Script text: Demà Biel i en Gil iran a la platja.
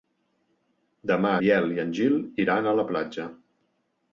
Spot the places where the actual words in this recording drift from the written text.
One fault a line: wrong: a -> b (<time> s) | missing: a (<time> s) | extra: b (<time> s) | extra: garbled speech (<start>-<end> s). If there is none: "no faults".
no faults